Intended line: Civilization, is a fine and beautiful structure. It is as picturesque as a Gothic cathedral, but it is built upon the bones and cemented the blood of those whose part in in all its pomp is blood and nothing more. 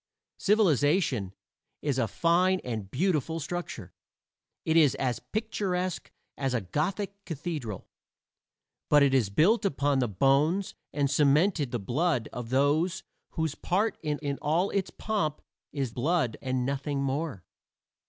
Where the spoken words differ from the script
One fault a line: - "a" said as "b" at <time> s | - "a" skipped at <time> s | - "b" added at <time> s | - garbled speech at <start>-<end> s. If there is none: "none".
none